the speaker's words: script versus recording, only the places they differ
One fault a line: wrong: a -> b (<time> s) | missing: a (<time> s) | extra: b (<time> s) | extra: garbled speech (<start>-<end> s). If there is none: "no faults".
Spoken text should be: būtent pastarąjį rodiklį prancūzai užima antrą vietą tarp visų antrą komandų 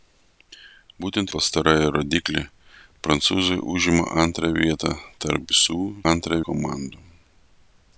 no faults